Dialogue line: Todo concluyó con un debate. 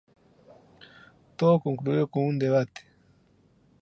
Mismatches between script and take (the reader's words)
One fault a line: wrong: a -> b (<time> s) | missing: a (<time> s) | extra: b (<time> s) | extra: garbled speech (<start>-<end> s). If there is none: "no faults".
no faults